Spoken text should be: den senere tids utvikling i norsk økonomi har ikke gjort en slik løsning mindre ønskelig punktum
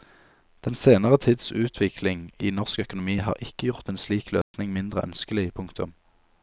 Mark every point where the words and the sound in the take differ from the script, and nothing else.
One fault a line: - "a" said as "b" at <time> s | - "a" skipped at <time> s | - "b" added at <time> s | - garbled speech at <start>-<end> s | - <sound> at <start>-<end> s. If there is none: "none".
- dropout at 4.4-4.5 s